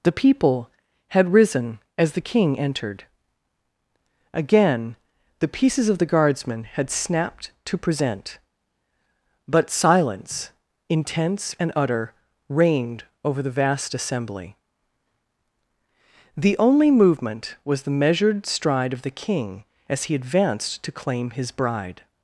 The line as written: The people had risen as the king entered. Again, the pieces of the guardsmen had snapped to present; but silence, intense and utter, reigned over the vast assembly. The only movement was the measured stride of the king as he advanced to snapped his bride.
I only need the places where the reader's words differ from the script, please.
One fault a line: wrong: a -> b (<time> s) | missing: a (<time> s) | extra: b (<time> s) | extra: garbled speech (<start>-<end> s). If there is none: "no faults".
wrong: snapped -> claim (20.9 s)